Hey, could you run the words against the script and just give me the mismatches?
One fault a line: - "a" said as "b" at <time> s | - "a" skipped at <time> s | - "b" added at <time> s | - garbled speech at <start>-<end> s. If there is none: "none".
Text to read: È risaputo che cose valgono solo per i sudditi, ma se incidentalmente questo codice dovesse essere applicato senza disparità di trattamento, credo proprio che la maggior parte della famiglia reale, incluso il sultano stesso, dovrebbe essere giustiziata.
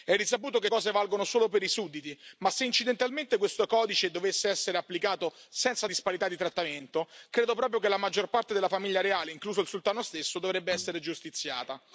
none